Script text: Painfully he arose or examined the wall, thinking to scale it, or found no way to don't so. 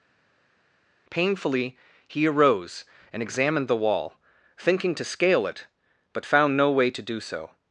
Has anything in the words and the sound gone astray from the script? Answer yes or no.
yes